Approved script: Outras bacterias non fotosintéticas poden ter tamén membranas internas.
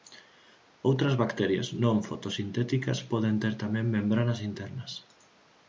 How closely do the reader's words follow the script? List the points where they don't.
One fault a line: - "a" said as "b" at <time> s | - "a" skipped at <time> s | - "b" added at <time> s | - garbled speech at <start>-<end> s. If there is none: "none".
none